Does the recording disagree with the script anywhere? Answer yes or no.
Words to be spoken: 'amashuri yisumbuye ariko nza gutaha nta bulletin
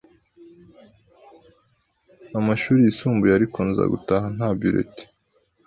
no